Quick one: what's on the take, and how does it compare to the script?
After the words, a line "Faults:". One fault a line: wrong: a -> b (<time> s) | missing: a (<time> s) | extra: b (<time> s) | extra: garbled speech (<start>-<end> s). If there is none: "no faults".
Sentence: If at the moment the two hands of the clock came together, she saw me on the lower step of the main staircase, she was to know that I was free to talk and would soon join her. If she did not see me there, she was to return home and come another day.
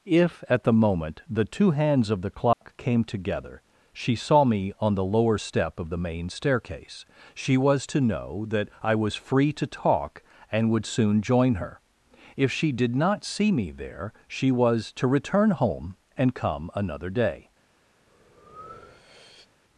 If at the moment the two hands of the clock came together, she saw me on the lower step of the main staircase, she was to know that I was free to talk and would soon join her. If she did not see me there, she was to return home and come another day.
Faults:
no faults